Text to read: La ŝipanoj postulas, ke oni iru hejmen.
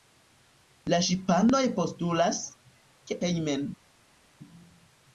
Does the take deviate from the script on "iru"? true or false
true